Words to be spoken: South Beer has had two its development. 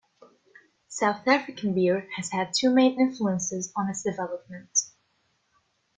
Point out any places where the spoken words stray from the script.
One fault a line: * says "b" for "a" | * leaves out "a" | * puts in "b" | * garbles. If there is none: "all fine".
* puts in "African"
* puts in "main influences on"